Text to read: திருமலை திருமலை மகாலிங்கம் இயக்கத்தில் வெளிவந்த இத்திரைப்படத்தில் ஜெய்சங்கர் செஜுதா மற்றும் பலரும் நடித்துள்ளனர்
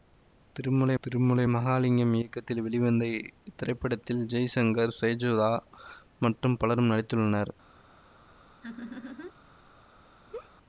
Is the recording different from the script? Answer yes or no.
no